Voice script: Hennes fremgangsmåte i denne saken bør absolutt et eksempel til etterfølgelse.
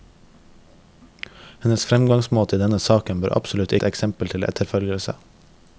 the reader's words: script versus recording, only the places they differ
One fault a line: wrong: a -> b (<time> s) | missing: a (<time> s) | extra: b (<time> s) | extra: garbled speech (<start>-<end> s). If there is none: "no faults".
no faults